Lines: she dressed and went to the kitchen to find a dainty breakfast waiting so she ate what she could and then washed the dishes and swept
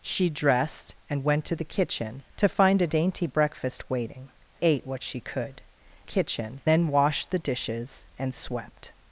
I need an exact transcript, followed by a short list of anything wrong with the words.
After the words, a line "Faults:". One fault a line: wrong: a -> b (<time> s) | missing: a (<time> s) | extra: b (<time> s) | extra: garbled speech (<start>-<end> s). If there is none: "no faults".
she dressed and went to the kitchen to find a dainty breakfast waiting ate what she could kitchen then washed the dishes and swept
Faults:
missing: so she (4.3 s)
wrong: and -> kitchen (6.0 s)